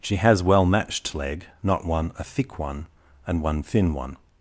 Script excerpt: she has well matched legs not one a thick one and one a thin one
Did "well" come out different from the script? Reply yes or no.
no